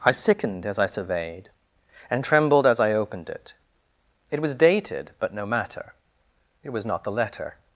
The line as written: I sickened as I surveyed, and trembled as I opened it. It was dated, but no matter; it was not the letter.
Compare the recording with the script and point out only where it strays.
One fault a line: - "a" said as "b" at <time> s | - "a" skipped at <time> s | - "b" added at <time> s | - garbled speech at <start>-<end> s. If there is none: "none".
none